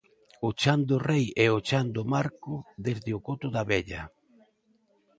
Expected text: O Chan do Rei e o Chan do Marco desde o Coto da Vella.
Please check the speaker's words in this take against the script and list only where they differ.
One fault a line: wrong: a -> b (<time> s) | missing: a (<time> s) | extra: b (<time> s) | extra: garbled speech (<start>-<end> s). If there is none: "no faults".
no faults